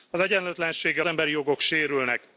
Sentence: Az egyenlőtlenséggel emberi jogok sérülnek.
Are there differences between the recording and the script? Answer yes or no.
no